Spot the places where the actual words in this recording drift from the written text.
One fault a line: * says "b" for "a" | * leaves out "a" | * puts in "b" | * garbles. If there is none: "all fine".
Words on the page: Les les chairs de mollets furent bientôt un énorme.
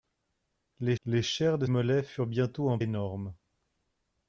all fine